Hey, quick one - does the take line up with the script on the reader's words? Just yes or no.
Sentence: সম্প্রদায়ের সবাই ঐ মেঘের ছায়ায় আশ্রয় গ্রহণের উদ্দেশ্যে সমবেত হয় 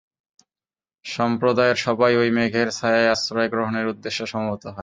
yes